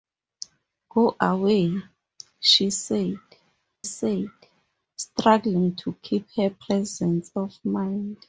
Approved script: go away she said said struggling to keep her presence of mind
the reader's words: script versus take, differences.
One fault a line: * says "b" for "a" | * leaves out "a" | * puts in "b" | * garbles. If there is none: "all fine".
all fine